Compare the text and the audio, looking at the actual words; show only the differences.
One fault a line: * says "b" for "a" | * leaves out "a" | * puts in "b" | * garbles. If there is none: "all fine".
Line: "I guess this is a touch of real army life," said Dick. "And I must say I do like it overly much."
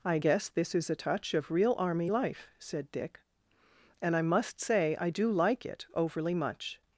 all fine